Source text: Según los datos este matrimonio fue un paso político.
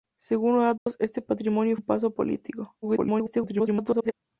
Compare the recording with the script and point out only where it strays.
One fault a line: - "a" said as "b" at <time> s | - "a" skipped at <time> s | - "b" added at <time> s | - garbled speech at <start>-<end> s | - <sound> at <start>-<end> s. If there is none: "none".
- dropout at 0.8-0.9 s
- "fue" skipped at 1.8 s
- garbled speech at 2.8-4.1 s